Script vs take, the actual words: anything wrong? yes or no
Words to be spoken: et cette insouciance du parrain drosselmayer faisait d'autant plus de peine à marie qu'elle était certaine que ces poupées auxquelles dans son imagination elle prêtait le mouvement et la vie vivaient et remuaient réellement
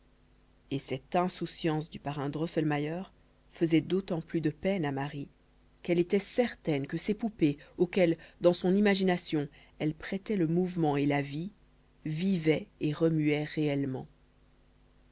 no